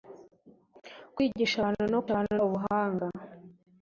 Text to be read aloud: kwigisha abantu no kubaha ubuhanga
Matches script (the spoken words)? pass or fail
fail